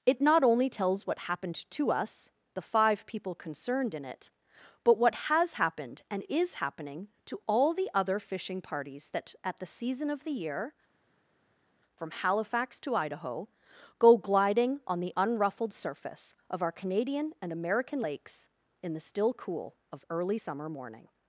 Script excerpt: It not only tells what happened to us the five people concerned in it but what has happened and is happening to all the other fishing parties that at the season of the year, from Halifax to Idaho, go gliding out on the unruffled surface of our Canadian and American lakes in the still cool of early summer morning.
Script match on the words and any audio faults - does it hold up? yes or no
no